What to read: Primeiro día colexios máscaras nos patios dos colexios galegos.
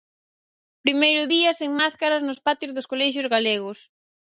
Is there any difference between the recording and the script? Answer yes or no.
yes